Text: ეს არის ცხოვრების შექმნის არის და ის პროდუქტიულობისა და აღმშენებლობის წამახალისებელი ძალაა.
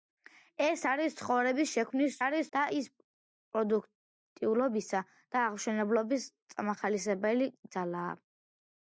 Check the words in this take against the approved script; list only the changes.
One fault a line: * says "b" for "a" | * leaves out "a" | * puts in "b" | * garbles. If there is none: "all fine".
all fine